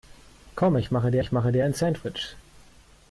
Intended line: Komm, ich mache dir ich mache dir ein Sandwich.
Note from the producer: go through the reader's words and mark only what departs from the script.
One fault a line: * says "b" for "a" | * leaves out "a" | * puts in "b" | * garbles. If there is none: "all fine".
all fine